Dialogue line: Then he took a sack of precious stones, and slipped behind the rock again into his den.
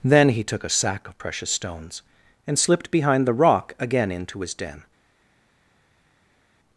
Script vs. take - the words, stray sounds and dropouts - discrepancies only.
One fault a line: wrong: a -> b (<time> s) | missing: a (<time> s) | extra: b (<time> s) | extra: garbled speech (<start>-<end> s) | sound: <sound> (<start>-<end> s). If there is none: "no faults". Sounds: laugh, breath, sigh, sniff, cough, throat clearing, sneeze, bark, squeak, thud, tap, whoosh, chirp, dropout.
no faults